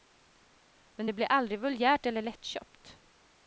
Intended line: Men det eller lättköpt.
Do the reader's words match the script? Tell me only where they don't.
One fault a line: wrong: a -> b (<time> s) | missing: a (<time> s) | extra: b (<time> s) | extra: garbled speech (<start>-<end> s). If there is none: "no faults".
extra: blir aldrig vulgärt (1.1 s)